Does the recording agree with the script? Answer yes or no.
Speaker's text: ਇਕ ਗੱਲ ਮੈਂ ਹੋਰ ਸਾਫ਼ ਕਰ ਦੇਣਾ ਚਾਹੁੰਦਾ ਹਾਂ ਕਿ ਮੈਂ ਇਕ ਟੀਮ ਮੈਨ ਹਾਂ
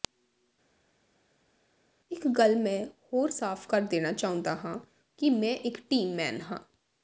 yes